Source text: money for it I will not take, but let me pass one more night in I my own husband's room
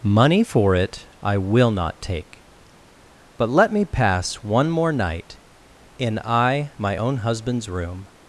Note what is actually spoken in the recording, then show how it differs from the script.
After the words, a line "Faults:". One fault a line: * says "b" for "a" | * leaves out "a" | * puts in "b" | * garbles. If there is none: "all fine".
money for it I will not take, but let me pass one more night in I my own husband's room
Faults:
all fine